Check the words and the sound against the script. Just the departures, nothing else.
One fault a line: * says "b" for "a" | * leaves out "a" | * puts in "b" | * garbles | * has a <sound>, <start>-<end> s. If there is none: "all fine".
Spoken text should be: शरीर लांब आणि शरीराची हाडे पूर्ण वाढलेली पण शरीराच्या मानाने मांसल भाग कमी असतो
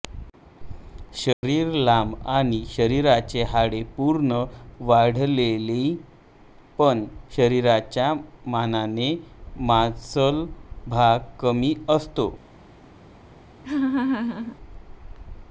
* has a dropout, 1.3-1.4 s
* has a laugh, 13.6-14.6 s